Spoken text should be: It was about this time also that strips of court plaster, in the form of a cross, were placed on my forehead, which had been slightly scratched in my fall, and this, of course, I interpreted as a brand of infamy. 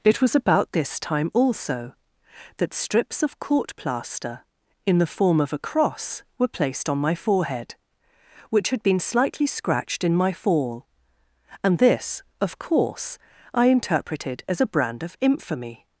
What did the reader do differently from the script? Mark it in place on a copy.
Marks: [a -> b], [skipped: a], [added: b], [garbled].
It was about this time also that strips of court plaster, in the form of a cross, were placed on my forehead, which had been slightly scratched in my fall, and this, of course, I interpreted as a brand of infamy.